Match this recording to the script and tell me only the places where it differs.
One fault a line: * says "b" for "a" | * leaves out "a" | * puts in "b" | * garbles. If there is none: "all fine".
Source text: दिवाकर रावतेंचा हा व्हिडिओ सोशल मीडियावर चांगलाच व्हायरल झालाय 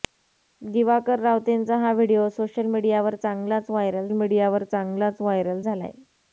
* puts in "मीडियावर चांगलाच व्हायरल"